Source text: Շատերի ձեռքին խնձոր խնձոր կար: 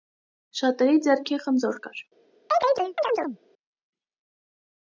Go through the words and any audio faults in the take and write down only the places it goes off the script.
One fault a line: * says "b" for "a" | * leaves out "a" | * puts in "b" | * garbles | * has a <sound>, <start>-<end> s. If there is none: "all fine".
* leaves out "խնձոր"
* has a chirp, 2.5-3.4 s